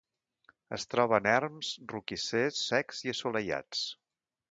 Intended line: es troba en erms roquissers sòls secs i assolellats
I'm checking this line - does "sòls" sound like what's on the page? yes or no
no